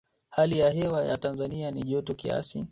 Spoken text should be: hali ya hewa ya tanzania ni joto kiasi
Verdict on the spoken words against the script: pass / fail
pass